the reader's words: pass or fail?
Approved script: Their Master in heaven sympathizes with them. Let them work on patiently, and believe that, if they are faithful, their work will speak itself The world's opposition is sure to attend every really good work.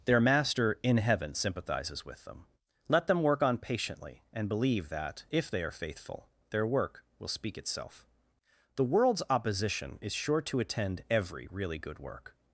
pass